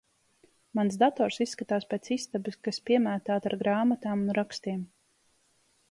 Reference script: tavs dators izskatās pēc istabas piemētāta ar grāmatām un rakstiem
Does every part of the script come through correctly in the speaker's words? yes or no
no